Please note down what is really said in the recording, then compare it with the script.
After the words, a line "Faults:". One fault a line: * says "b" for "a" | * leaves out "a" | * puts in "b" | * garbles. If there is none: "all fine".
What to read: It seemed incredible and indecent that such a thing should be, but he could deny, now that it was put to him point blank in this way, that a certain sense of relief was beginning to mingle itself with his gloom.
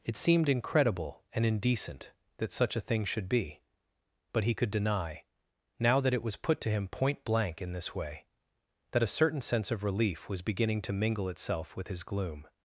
It seemed incredible and indecent that such a thing should be, but he could deny, now that it was put to him point blank in this way, that a certain sense of relief was beginning to mingle itself with his gloom.
Faults:
all fine